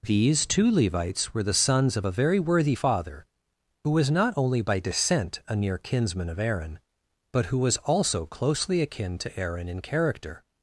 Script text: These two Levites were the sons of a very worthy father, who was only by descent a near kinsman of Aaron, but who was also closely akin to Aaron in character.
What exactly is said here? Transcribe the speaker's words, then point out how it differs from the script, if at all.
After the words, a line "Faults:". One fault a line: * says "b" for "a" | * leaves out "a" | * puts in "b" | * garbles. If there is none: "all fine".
These two Levites were the sons of a very worthy father, who was not only by descent a near kinsman of Aaron, but who was also closely akin to Aaron in character.
Faults:
* puts in "not"